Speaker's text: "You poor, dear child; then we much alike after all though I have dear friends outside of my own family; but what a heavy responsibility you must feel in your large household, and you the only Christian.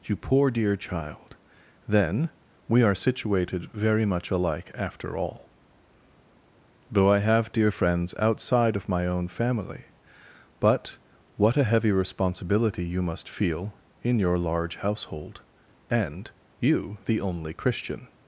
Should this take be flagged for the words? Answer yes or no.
yes